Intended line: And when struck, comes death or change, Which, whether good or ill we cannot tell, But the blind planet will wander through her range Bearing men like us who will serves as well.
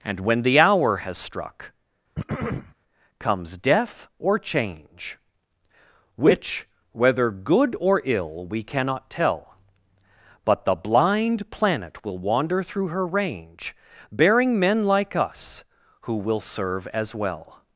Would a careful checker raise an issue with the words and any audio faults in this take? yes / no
yes